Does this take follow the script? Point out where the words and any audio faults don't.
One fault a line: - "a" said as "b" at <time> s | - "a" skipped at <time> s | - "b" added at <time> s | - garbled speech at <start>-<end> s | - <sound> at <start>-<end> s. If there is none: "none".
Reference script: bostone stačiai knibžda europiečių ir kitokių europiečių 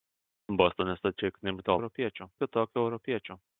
none